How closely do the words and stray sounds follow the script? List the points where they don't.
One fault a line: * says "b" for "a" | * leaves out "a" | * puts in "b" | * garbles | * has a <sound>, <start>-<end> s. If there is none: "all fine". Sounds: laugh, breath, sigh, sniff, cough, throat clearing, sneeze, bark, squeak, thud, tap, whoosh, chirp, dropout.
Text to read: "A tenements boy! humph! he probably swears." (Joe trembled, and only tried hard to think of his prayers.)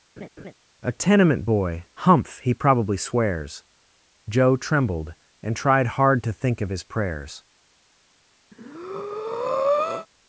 * has a laugh, 0.2-0.5 s
* says "tenement" for "tenements"
* leaves out "only"
* has a breath, 8.5-10.1 s